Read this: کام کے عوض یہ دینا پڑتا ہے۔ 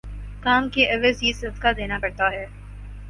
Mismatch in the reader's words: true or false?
true